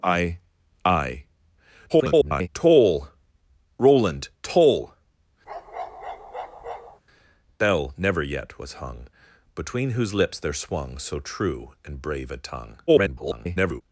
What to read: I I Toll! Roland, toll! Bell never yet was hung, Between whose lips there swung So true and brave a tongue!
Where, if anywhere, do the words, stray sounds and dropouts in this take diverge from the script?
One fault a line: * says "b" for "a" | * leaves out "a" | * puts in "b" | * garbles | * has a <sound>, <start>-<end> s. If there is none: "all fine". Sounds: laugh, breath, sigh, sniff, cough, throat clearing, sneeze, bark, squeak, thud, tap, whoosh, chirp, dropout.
* garbles
* has a bark, 5.5-7.0 s
* garbles